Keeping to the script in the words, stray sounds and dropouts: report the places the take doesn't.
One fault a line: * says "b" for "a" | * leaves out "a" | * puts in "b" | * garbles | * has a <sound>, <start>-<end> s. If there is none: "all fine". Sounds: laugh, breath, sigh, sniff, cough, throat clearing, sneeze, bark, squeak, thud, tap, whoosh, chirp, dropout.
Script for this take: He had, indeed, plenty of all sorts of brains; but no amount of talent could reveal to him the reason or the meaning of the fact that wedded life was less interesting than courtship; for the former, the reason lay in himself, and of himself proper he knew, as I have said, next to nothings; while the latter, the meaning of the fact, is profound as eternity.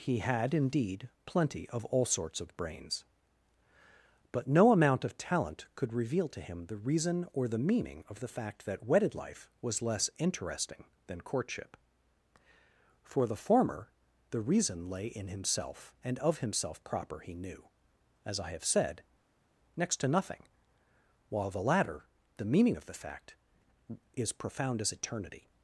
* says "nothing" for "nothings"